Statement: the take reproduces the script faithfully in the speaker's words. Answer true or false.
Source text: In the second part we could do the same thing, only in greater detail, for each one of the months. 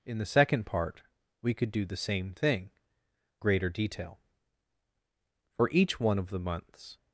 false